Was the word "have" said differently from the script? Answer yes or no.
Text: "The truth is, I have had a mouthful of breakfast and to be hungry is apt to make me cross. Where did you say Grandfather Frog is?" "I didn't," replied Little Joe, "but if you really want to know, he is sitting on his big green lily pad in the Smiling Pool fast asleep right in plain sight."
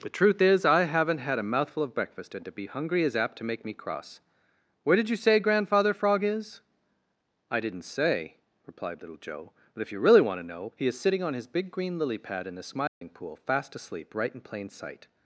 yes